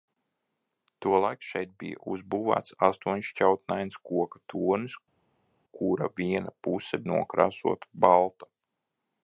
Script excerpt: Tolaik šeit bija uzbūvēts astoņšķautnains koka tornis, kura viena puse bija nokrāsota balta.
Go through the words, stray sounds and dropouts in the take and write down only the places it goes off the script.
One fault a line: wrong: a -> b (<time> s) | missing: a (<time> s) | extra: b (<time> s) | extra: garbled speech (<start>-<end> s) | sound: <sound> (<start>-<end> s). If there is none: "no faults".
missing: bija (7.0 s)